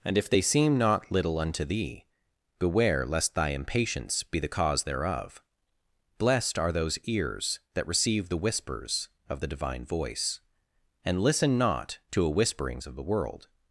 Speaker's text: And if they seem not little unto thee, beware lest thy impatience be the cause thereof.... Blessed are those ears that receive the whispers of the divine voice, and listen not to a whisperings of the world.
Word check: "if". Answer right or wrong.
right